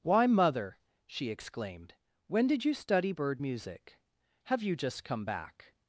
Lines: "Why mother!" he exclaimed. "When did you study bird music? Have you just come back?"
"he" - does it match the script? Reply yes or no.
no